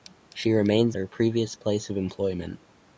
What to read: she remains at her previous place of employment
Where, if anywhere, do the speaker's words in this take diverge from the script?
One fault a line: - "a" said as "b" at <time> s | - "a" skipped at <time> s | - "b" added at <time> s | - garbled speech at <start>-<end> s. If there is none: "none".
- "at" skipped at 1.0 s